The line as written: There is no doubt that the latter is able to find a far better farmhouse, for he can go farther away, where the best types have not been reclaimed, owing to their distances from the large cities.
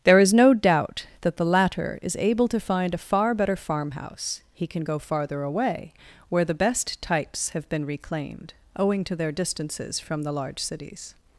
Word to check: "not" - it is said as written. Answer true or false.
false